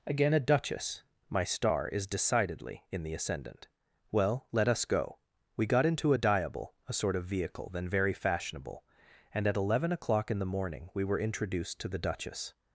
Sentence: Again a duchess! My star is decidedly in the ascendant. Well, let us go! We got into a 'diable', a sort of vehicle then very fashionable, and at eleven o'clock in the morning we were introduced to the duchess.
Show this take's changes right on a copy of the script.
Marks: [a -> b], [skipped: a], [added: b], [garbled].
Again a duchess! My star is decidedly in the ascendant. Well, let us go! We got into a 'diable', a sort of vehicle then very fashionable, and at eleven o'clock in the morning we were introduced to the duchess.